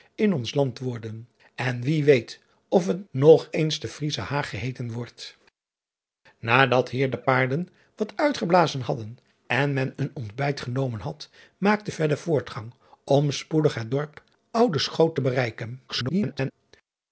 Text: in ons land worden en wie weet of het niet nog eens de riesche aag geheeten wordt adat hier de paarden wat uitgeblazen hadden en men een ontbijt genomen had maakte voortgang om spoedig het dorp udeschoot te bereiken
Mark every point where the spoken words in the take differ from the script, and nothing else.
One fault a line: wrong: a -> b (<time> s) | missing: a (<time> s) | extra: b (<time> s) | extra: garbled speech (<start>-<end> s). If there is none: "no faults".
missing: niet (3.1 s)
extra: garbled speech (15.9-16.5 s)